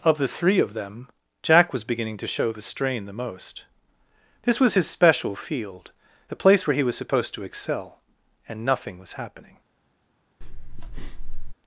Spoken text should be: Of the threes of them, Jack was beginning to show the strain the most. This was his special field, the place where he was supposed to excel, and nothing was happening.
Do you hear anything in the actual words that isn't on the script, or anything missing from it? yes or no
yes